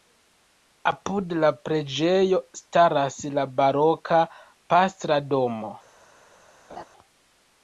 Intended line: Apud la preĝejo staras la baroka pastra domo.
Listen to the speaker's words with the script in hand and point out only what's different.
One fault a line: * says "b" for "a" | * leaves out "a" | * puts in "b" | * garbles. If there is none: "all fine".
all fine